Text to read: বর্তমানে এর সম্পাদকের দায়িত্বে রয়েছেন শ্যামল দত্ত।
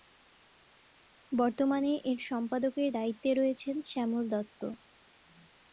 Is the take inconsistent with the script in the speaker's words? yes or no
no